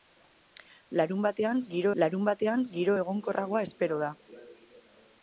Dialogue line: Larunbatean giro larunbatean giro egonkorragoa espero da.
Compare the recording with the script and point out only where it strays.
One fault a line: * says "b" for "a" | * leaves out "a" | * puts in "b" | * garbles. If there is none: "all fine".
all fine